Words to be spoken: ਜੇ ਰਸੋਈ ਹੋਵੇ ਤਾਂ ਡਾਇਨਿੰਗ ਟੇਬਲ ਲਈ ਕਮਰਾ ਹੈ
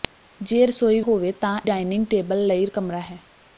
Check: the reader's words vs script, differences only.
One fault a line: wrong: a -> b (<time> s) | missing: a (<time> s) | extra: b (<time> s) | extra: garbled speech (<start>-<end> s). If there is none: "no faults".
no faults